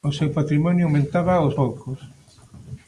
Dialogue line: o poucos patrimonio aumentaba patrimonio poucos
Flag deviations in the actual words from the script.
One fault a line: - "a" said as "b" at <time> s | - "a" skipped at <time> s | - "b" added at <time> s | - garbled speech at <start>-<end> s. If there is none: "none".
- "poucos" said as "seu" at 0.1 s
- "patrimonio" said as "aos" at 1.4 s